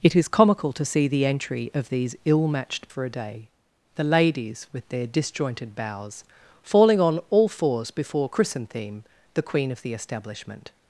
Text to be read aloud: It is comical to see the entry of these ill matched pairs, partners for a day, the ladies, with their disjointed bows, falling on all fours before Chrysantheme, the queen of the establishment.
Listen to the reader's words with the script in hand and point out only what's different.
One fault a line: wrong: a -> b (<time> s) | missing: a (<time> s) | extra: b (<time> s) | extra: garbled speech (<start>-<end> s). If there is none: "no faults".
missing: pairs partners (2.9 s)